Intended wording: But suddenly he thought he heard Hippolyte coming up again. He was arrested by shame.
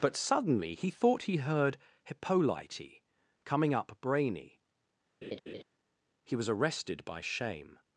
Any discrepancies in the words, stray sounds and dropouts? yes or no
yes